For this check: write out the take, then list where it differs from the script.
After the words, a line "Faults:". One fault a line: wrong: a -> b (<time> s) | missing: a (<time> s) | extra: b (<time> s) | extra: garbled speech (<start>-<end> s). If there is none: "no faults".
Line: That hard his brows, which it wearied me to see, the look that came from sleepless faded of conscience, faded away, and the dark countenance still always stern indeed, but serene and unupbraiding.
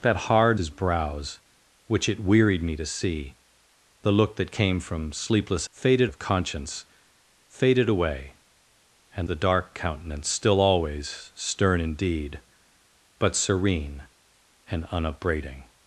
That hard his brows, which it wearied me to see, the look that came from sleepless faded of conscience, faded away, and the dark countenance still always stern indeed, but serene and unupbraiding.
Faults:
no faults